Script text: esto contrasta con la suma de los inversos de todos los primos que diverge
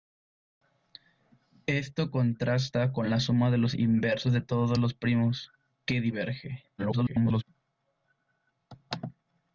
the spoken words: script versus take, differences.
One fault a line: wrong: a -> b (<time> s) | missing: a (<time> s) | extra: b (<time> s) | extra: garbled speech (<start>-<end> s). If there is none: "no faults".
extra: garbled speech (6.8-7.4 s)